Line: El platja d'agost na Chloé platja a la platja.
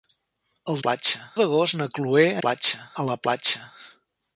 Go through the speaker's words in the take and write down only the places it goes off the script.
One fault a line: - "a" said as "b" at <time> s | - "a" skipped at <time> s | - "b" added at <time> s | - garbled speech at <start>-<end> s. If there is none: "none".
none